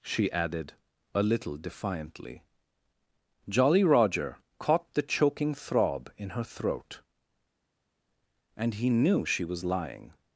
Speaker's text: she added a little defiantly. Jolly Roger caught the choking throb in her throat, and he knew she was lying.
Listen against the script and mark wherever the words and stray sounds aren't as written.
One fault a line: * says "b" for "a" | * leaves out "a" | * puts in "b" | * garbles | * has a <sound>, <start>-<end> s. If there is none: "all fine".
all fine